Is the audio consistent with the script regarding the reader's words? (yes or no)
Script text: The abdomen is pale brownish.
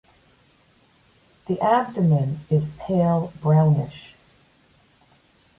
yes